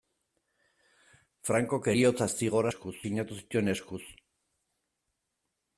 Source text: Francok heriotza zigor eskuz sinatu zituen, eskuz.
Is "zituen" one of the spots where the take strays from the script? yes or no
no